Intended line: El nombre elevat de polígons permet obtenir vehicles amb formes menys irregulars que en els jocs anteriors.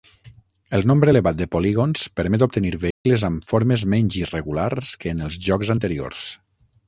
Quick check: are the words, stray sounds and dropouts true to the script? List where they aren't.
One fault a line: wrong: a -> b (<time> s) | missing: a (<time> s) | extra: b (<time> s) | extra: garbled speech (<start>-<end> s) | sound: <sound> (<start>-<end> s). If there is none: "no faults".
sound: dropout (2.9-3.1 s)